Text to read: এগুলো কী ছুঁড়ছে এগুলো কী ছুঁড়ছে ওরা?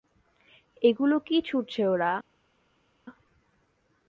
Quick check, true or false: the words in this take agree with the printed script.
false